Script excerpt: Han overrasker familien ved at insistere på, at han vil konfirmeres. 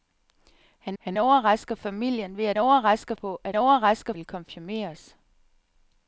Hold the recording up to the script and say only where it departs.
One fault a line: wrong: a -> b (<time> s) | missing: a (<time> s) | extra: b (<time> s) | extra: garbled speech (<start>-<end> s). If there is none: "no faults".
extra: han (1.0 s)
wrong: insistere -> overrasker (2.6 s)
wrong: han -> overrasker (3.5 s)